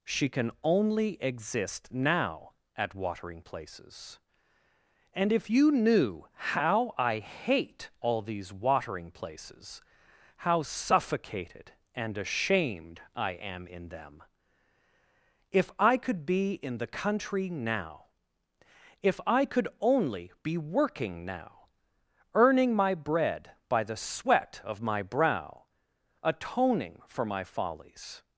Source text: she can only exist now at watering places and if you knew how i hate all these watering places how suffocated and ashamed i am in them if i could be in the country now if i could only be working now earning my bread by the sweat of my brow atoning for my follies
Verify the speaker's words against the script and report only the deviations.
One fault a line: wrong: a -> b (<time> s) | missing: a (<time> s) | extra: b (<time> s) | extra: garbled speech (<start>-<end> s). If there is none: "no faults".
no faults